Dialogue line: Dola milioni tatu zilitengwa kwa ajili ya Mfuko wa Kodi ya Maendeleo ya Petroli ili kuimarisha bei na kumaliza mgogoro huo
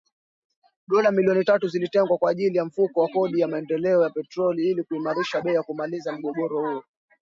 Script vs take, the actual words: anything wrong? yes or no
no